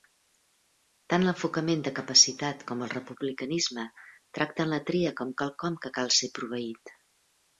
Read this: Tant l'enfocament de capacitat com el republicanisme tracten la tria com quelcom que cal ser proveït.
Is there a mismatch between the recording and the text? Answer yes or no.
no